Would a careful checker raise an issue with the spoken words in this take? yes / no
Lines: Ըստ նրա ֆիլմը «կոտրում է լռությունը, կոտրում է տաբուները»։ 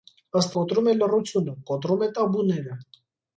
yes